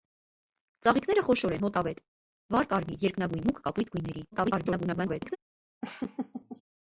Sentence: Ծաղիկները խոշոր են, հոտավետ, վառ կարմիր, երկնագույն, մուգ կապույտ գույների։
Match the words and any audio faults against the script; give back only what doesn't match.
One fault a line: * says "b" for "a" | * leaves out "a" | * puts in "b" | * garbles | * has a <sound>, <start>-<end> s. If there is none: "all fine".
* garbles
* has a laugh, 5.8-6.6 s